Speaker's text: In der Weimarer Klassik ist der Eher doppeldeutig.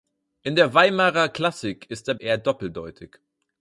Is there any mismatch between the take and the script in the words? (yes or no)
no